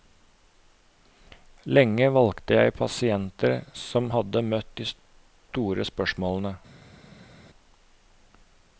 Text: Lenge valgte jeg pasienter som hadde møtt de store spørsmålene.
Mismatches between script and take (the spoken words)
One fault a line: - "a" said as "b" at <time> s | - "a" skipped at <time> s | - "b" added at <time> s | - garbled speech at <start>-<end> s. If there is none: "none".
none